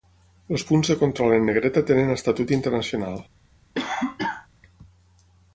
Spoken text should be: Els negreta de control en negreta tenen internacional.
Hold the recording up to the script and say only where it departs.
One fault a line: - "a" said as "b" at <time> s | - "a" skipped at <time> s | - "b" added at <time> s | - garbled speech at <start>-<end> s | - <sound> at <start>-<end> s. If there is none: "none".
- "negreta" said as "punts" at 0.7 s
- "estatut" added at 2.2 s
- cough at 3.7-4.5 s